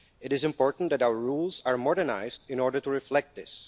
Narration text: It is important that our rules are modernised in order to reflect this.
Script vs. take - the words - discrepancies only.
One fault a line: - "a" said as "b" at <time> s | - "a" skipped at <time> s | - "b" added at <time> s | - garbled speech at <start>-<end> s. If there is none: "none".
none